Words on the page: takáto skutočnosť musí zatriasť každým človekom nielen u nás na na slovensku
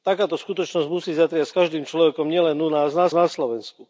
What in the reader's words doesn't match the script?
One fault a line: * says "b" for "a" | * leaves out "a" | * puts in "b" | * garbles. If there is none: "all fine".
all fine